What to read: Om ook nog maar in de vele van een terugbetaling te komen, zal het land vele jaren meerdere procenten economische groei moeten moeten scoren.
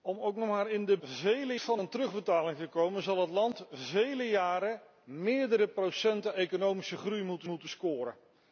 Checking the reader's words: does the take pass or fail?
pass